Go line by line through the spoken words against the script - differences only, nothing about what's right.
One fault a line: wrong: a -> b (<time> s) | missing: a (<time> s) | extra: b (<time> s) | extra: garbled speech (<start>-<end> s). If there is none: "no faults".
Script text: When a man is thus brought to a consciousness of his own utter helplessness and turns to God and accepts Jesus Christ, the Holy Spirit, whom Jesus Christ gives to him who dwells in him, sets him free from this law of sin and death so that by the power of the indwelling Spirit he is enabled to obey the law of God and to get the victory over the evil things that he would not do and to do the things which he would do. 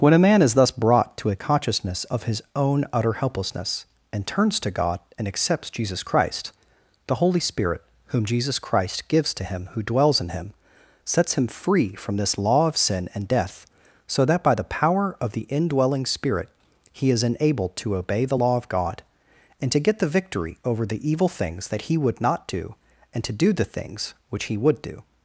no faults